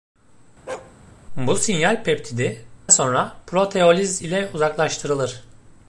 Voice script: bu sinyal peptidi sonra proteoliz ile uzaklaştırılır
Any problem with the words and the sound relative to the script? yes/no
yes